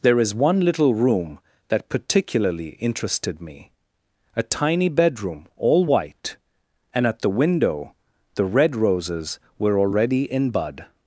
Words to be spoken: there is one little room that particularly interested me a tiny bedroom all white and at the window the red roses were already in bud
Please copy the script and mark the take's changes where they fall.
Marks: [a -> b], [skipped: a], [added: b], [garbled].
there is one little room that particularly interested me a tiny bedroom all white and at the window the red roses were already in bud